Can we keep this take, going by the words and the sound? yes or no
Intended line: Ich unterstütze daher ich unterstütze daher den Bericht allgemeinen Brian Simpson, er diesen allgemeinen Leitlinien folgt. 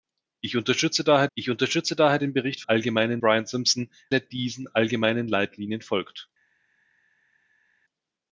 yes